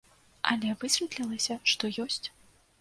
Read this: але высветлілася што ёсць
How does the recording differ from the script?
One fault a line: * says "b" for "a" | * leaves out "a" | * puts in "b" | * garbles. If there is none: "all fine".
all fine